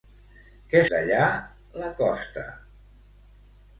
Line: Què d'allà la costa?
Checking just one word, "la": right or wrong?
right